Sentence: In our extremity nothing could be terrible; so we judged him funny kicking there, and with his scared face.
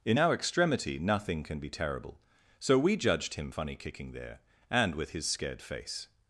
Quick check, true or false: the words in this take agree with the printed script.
false